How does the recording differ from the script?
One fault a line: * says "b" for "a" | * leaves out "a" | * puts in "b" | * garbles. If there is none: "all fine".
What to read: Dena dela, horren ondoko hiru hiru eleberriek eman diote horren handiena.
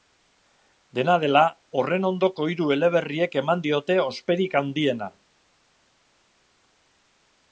* leaves out "hiru"
* says "osperik" for "horren"